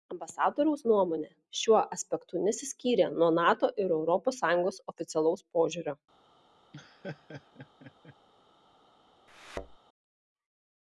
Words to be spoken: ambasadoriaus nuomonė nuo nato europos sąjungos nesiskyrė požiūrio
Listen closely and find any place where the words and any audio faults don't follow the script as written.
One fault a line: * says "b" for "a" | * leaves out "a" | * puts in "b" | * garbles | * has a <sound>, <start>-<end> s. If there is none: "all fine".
* puts in "šiuo aspektu nesiskyrė"
* puts in "ir"
* says "oficialaus" for "nesiskyrė"
* has a laugh, 6.7-8.2 s
* has a thud, 9.3-9.8 s